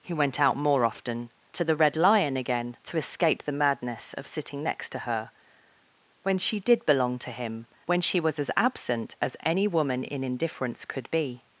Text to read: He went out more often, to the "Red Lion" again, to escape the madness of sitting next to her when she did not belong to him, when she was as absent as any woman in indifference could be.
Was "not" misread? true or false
true